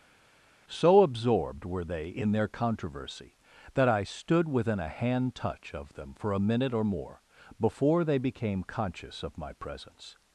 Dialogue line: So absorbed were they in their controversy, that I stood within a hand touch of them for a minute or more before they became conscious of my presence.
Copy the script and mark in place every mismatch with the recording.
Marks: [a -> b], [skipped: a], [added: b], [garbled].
So absorbed were they in their controversy, that I stood within a hand touch of them for a minute or more before they became conscious of my presence.